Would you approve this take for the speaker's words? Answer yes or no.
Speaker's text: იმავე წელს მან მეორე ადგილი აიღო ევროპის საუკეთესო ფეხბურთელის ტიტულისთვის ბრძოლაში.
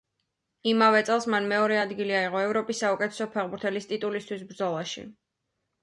yes